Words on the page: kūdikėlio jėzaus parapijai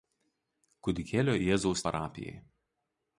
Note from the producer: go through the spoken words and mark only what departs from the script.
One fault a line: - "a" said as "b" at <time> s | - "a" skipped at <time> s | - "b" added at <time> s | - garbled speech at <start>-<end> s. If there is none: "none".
none